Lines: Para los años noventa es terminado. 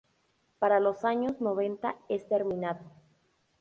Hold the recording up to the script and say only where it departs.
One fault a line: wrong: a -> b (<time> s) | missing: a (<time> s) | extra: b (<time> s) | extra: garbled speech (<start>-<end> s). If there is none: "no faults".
no faults